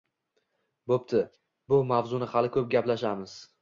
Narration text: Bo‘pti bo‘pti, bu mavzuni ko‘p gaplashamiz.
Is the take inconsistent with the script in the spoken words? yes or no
yes